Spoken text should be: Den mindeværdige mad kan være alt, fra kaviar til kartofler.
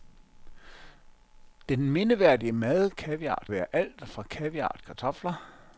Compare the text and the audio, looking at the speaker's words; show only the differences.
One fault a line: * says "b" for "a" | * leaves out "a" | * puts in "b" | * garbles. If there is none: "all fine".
* says "kaviar" for "kan"
* leaves out "til"